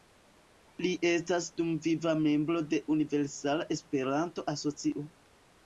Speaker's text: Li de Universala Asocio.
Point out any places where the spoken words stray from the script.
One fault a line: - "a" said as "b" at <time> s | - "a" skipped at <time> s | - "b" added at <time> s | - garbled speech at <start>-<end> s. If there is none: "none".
- "estas dumviva membro" added at 1.1 s
- "Esperanto" added at 3.8 s